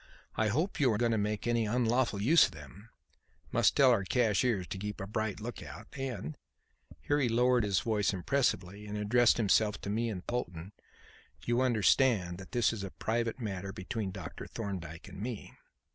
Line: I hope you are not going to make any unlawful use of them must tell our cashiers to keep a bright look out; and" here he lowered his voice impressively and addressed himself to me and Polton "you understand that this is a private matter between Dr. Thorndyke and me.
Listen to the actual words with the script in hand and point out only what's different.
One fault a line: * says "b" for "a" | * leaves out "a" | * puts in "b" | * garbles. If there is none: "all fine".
* leaves out "not"